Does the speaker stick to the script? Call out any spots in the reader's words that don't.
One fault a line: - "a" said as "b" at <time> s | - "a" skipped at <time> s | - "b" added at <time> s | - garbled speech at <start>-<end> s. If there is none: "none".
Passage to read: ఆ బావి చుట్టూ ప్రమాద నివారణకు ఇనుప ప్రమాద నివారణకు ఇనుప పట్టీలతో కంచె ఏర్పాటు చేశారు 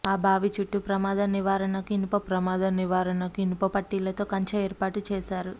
none